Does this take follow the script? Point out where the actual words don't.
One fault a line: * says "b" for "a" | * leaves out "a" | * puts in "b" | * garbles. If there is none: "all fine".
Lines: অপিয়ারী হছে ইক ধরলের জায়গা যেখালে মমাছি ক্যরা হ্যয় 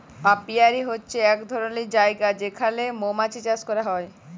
* puts in "চাষ"